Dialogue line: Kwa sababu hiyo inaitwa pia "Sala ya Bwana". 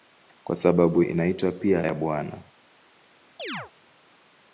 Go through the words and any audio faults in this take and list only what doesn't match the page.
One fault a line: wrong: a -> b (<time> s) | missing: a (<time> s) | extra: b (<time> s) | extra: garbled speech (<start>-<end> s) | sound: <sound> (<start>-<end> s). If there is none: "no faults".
missing: hiyo (1.0 s)
missing: Sala (1.8 s)
sound: chirp (3.4-3.7 s)